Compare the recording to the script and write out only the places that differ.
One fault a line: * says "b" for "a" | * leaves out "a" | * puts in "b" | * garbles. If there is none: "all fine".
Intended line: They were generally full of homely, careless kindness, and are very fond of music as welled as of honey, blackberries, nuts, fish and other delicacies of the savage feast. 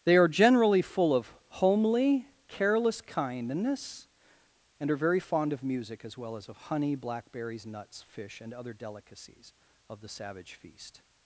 * says "are" for "were"
* says "well" for "welled"